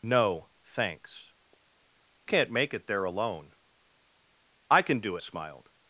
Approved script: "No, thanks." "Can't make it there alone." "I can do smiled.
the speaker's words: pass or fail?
pass